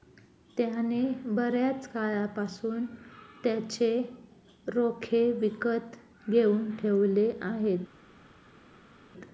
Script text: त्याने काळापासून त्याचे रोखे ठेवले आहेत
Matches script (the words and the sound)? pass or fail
fail